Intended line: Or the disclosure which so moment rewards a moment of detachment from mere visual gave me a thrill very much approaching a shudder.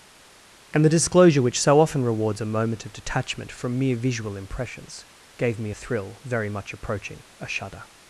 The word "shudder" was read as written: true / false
true